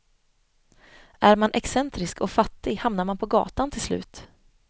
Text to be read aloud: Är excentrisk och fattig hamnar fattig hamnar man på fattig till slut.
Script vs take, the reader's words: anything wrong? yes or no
yes